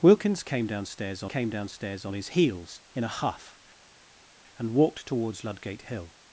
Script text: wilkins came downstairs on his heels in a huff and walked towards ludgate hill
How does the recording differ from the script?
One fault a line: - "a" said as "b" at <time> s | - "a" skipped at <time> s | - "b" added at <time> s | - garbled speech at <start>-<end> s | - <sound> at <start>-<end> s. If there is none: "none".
- "came downstairs on" added at 1.2 s